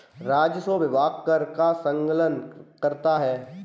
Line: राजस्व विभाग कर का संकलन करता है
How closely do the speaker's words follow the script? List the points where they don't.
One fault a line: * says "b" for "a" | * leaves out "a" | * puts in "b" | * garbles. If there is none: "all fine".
all fine